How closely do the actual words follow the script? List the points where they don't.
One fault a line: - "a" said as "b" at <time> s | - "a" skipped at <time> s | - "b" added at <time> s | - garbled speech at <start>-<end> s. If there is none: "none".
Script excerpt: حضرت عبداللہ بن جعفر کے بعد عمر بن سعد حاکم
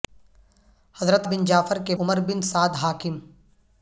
- "عبداللہ" skipped at 1.3 s
- "بعد" skipped at 1.9 s